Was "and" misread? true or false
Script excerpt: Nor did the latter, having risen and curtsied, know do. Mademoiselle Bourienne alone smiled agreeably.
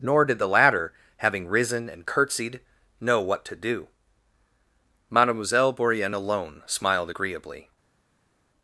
false